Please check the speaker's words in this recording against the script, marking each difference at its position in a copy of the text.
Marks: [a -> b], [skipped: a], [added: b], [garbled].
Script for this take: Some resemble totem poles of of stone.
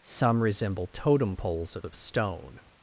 Some resemble totem poles of of stone.